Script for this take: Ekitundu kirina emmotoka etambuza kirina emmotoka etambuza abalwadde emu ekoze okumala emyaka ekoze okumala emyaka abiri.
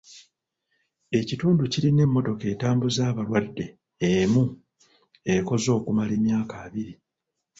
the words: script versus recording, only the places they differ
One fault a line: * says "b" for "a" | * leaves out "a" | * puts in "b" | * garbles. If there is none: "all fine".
* leaves out "kirina emmotoka etambuza"
* leaves out "ekoze okumala emyaka"